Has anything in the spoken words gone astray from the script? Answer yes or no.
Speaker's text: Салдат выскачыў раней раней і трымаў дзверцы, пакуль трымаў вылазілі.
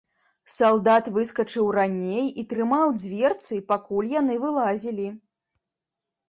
yes